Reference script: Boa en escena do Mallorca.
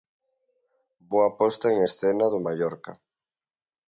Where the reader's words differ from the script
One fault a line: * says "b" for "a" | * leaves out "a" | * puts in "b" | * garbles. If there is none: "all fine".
* puts in "posta"